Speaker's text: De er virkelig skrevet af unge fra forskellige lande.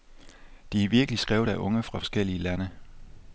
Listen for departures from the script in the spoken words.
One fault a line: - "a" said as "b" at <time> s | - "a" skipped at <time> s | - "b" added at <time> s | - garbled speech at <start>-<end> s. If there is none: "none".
none